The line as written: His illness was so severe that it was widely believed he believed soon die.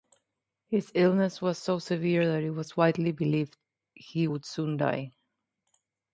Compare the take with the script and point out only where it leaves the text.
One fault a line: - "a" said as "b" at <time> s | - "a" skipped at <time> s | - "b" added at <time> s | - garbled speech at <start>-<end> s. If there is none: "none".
- "believed" said as "would" at 4.2 s